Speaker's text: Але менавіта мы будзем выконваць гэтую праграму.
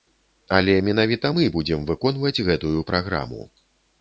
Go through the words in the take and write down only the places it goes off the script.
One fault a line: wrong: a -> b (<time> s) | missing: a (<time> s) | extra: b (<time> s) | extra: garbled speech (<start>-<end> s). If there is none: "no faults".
no faults